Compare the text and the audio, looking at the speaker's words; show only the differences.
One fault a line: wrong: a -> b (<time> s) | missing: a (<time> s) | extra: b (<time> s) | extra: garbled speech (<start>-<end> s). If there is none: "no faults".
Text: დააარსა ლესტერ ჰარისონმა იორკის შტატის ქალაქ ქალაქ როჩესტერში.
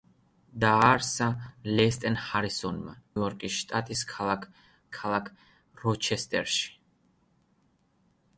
no faults